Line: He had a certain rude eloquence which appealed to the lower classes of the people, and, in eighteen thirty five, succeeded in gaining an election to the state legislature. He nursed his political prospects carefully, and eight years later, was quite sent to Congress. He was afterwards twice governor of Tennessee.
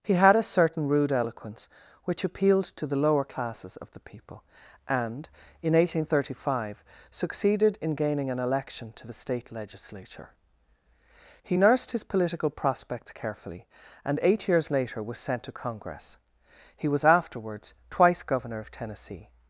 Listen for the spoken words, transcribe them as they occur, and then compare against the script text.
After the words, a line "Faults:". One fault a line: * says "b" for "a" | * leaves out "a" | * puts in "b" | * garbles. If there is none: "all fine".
He had a certain rude eloquence which appealed to the lower classes of the people, and, in eighteen thirty five, succeeded in gaining an election to the state legislature. He nursed his political prospects carefully, and eight years later, was sent to Congress. He was afterwards twice governor of Tennessee.
Faults:
* leaves out "quite"